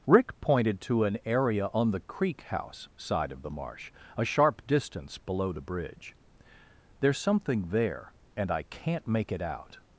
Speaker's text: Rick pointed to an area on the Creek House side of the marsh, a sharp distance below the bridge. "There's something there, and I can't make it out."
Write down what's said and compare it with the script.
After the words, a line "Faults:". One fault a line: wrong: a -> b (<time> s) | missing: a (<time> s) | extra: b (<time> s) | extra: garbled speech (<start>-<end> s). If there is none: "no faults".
Rick pointed to an area on the Creek House side of the marsh, a sharp distance below the bridge. "There's something there, and I can't make it out."
Faults:
no faults